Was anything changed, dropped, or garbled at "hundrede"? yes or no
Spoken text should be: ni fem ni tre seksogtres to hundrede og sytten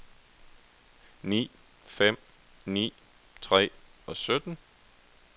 yes